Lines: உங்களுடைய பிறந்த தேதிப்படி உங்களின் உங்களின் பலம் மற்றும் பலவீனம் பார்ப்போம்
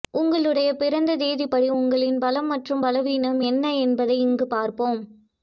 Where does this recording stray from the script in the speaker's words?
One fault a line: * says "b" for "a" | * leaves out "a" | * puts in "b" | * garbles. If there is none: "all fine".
* leaves out "உங்களின்"
* puts in "என்ன என்பதை இங்கு"